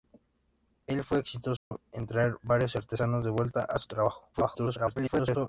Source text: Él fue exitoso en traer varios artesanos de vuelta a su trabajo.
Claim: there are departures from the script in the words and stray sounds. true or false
true